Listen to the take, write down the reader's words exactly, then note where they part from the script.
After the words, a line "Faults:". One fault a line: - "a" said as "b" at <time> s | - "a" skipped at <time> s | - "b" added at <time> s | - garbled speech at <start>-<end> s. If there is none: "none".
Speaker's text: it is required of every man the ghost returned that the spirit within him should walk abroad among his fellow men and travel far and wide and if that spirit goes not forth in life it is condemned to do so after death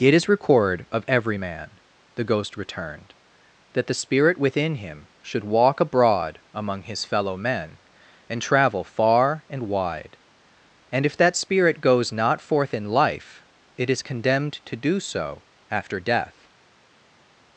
it is record of every man the ghost returned that the spirit within him should walk abroad among his fellow men and travel far and wide and if that spirit goes not forth in life it is condemned to do so after death
Faults:
- "required" said as "record" at 0.3 s